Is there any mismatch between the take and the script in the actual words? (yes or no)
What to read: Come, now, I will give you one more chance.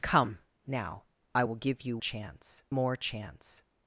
yes